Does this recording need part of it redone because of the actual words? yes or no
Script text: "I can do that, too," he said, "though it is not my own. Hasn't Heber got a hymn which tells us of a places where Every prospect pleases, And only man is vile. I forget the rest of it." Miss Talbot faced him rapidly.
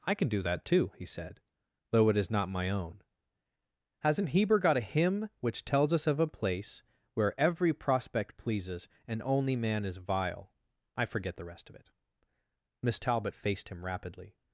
yes